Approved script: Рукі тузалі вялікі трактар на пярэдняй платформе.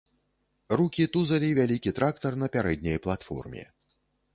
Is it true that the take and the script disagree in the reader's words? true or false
false